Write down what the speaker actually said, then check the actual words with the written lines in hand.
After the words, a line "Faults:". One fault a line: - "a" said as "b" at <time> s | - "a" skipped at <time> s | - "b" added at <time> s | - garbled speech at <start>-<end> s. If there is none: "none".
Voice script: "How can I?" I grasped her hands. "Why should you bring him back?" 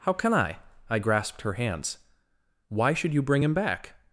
"How can I?" I grasped her hands. "Why should you bring him back?"
Faults:
none